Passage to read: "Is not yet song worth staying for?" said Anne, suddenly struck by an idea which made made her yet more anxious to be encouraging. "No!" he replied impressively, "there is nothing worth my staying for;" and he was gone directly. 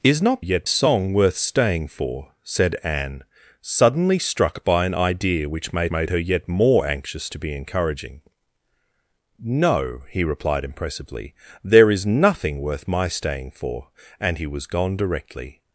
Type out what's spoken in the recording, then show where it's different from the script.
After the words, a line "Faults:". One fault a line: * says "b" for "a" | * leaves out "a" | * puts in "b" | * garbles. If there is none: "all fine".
"Is not yet song worth staying for?" said Anne, suddenly struck by an idea which made made her yet more anxious to be encouraging. "No!" he replied impressively, "there is nothing worth my staying for;" and he was gone directly.
Faults:
all fine